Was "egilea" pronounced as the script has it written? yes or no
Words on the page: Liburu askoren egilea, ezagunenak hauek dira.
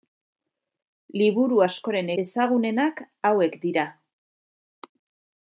no